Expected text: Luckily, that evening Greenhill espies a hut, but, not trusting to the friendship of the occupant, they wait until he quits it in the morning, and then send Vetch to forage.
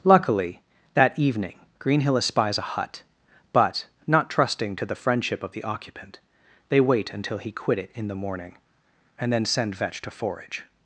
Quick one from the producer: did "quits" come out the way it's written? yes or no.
no